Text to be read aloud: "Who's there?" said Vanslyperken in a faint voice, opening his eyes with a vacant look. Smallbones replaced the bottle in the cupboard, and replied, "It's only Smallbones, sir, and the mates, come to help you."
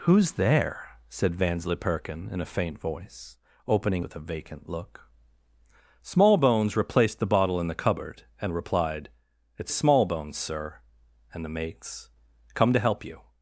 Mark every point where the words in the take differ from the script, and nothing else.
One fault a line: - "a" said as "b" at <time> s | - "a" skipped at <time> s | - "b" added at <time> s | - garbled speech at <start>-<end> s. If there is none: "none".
- "his eyes" skipped at 4.0 s
- "only" skipped at 9.7 s